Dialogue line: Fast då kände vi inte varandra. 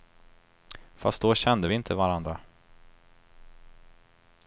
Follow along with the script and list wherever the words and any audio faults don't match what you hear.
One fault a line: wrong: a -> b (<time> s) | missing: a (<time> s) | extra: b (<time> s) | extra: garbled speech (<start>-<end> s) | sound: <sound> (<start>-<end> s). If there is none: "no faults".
no faults